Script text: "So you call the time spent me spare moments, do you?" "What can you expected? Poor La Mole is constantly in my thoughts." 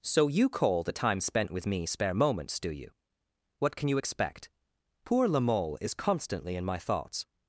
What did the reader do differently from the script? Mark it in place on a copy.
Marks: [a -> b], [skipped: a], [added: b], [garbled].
"So you call the time spent [added: with] me spare moments, do you?" "What can you [expected? -> expect] Poor La Mole is constantly in my thoughts."